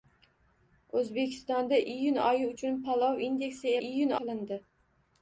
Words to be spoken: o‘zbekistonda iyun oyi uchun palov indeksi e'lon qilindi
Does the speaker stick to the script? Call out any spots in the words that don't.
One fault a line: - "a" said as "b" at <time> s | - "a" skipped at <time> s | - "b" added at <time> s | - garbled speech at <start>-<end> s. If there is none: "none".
- "e'lon" said as "iyun" at 3.9 s